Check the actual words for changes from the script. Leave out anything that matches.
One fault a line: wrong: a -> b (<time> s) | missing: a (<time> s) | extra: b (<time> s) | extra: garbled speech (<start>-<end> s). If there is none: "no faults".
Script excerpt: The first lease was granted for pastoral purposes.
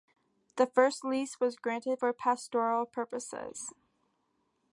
no faults